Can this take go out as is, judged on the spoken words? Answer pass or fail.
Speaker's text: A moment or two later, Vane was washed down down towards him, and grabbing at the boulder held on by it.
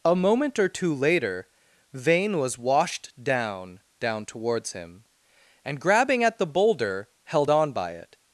pass